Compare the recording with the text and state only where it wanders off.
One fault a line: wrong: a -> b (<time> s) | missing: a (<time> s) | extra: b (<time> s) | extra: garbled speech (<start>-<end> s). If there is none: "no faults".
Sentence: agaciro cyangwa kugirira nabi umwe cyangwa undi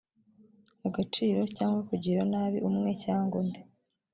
no faults